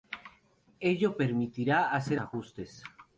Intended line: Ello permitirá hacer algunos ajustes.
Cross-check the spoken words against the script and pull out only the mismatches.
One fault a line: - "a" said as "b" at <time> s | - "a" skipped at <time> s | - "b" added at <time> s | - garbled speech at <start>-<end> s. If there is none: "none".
- "algunos" skipped at 2.2 s